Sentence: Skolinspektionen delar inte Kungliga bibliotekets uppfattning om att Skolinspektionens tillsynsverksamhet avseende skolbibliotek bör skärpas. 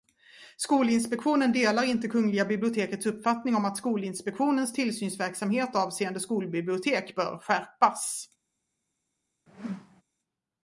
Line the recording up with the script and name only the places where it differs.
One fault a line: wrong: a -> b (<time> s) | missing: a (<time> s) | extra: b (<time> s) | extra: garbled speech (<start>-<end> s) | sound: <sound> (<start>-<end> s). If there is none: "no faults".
sound: whoosh (9.5-10.0 s)